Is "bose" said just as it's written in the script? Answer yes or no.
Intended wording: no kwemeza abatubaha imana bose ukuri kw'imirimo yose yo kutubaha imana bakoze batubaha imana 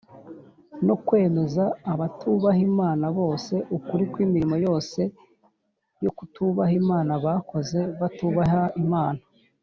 yes